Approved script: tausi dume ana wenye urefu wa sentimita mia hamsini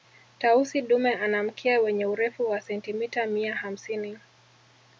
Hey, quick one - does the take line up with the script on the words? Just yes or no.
no